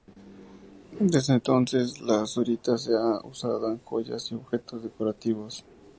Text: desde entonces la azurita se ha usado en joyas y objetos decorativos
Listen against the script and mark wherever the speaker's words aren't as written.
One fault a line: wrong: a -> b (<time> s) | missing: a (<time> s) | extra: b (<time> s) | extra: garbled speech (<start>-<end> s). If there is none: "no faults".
no faults